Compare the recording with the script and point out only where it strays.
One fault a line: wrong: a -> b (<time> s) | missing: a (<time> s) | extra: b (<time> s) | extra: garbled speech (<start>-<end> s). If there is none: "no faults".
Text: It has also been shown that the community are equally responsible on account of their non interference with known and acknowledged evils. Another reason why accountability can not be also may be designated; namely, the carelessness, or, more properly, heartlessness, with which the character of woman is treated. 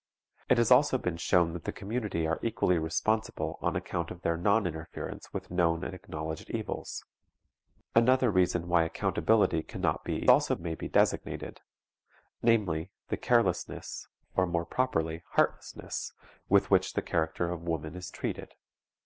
no faults